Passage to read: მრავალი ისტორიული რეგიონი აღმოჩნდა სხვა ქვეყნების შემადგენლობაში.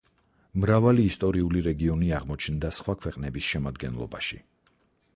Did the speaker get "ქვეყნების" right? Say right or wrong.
right